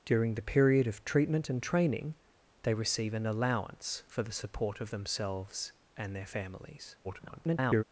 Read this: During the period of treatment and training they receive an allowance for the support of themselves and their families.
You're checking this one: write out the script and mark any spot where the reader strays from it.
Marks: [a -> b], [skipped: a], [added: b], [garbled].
During the period of treatment and training they receive an allowance for the support of themselves and their families. [garbled]